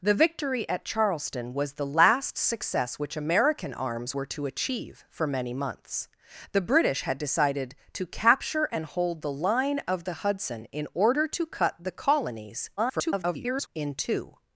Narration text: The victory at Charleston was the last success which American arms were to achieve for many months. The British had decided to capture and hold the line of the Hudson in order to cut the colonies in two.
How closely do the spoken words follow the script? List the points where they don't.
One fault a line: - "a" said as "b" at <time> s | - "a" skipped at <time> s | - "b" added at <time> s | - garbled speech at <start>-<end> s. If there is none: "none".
- garbled speech at 12.8-13.7 s